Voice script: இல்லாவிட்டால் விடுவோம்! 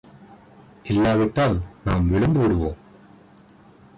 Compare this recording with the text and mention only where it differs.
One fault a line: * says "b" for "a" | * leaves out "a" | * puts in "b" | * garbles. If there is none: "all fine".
* puts in "நாம் விழுந்து"